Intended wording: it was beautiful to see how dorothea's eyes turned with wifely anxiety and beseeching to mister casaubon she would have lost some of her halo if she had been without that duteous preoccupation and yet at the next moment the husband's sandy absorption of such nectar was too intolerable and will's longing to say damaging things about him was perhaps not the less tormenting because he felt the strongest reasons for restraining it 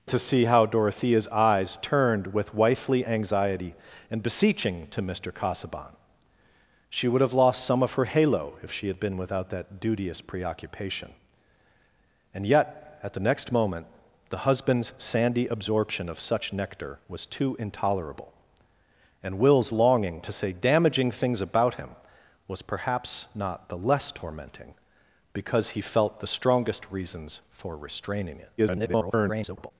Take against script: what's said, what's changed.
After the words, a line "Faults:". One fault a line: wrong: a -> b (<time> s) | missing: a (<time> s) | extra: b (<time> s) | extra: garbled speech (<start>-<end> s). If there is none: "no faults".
it to see how dorothea's eyes turned with wifely anxiety and beseeching to mister casaubon she would have lost some of her halo if she had been without that duteous preoccupation and yet at the next moment the husband's sandy absorption of such nectar was too intolerable and will's longing to say damaging things about him was perhaps not the less tormenting because he felt the strongest reasons for restraining it [garbled]
Faults:
missing: was beautiful (0.1 s)
extra: garbled speech (28.6-29.7 s)